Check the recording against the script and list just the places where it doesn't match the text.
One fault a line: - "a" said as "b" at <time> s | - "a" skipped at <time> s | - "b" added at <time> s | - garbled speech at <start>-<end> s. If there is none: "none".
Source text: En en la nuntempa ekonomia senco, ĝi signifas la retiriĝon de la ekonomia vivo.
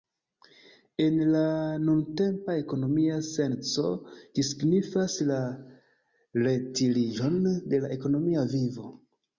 - "en" skipped at 1.2 s